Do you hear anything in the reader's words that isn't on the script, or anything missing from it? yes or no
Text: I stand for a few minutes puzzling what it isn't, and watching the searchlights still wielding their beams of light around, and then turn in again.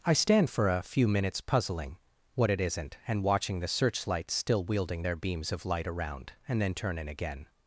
no